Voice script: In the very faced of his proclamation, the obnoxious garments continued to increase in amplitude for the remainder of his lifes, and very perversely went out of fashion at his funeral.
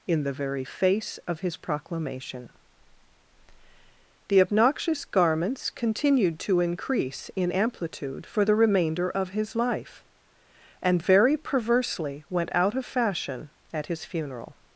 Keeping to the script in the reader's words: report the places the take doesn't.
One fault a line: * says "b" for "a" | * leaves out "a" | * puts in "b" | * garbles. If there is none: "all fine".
* says "face" for "faced"
* says "life" for "lifes"